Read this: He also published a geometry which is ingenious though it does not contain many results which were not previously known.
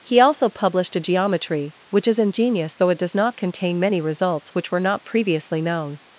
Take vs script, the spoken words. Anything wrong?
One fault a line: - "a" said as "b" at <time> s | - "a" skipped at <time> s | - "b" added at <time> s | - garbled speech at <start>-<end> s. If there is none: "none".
none